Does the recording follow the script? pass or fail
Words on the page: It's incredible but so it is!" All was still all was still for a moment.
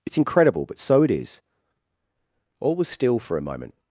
fail